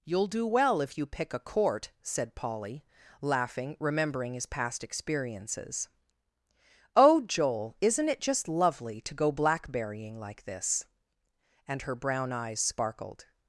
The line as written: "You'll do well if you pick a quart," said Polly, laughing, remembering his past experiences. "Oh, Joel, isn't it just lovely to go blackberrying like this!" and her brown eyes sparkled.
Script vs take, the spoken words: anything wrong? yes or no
yes